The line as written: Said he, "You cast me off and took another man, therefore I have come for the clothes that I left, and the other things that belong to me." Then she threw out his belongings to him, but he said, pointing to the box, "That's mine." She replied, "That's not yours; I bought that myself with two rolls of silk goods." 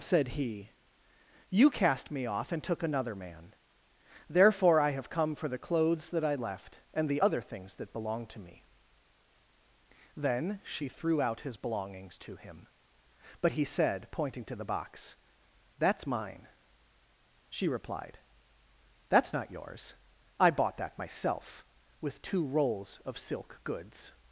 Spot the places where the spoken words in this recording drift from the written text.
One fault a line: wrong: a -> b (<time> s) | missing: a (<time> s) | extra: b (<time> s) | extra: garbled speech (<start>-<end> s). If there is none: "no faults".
no faults